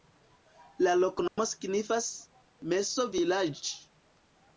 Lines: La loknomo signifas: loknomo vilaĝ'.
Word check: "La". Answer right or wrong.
right